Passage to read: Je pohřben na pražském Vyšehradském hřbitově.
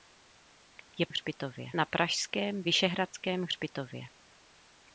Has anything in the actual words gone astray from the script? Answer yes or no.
yes